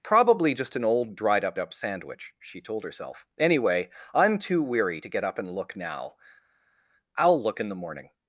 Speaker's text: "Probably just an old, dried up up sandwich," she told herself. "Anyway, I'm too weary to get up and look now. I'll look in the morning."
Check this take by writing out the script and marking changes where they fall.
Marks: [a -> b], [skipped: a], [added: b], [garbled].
"Probably just an old, dried up up sandwich," she told herself. "Anyway, I'm too weary to get up and look now. I'll look in the morning."